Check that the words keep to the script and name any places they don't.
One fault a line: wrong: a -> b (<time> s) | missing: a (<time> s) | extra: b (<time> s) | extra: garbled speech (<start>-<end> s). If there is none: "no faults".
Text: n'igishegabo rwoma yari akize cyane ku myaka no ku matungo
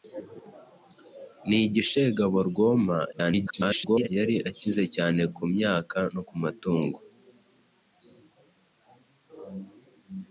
extra: garbled speech (3.1-4.1 s)